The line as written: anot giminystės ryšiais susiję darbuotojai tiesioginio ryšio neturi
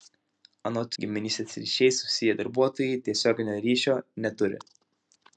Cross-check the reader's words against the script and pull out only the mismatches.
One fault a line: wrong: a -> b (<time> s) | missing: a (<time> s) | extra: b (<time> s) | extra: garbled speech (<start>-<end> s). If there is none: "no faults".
no faults